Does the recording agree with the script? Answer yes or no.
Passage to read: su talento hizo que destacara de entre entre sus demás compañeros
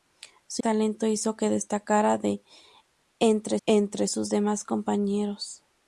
yes